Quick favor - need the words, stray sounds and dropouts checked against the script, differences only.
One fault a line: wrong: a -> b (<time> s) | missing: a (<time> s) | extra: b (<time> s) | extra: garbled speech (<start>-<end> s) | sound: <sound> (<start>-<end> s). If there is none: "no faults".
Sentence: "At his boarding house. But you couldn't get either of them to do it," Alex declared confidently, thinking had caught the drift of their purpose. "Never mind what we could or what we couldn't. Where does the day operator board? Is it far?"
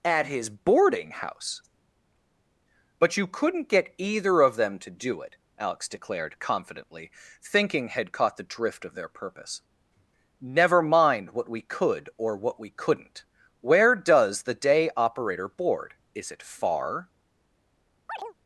sound: chirp (18.1-18.3 s)